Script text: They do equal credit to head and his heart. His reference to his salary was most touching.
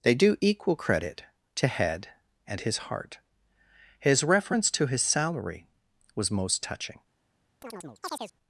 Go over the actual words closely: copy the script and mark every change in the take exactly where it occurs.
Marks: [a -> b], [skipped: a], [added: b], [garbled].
They do equal credit to head and his heart. His reference to his salary was most touching.